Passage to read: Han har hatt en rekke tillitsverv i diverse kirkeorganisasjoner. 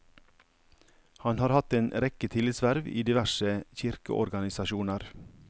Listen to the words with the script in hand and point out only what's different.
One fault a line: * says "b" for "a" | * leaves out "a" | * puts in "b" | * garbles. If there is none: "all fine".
all fine